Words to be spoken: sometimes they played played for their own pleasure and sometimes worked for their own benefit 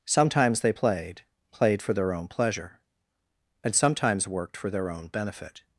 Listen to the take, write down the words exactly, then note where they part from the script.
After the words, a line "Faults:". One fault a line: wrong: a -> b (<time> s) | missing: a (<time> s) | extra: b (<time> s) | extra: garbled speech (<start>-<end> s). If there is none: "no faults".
sometimes they played played for their own pleasure and sometimes worked for their own benefit
Faults:
no faults